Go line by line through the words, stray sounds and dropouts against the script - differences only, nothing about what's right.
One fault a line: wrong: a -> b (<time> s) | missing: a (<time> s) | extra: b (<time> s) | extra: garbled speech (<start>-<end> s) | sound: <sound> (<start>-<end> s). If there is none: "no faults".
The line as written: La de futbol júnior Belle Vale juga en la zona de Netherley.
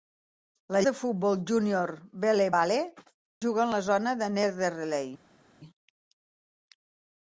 no faults